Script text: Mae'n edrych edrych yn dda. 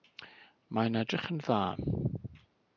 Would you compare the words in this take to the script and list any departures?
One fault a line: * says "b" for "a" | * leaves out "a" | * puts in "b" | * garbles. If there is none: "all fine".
* leaves out "edrych"